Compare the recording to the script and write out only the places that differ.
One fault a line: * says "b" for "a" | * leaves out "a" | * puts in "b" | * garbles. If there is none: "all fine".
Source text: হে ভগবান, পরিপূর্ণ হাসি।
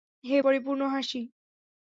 * leaves out "ভগবান"